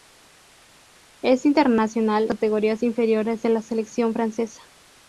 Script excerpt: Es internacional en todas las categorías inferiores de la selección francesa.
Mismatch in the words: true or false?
true